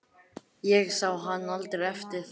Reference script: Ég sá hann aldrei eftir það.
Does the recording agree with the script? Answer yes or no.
yes